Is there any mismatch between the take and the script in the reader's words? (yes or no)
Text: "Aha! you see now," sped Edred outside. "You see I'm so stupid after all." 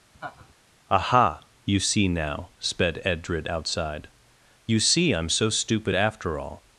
no